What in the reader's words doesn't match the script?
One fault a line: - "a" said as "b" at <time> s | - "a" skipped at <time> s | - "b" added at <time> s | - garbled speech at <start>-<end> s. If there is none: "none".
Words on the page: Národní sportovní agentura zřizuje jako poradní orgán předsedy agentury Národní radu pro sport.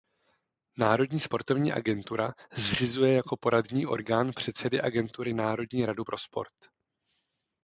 none